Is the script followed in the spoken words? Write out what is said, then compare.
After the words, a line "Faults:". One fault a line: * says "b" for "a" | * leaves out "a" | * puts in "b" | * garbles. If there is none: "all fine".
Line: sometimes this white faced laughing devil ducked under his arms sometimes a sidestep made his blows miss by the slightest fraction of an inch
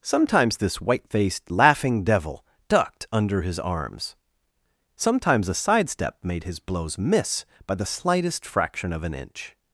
sometimes this white faced laughing devil ducked under his arms sometimes a sidestep made his blows miss by the slightest fraction of an inch
Faults:
all fine